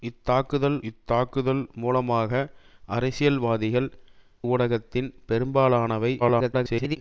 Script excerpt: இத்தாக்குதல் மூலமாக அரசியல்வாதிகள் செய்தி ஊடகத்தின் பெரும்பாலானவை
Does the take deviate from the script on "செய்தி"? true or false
true